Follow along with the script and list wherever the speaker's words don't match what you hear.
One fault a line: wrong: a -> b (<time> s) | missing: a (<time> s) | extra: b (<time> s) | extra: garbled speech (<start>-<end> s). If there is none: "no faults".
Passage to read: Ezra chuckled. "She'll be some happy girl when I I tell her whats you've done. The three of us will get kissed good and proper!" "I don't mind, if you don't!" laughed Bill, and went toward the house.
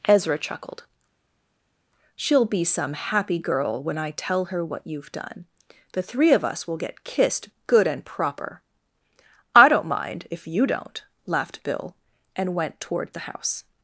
missing: I (4.1 s)
wrong: whats -> what (4.6 s)